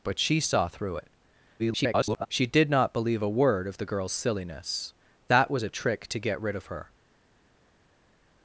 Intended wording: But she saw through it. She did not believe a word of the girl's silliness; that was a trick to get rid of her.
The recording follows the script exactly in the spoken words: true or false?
false